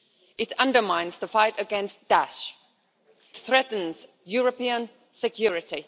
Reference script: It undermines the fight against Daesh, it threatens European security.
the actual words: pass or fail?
fail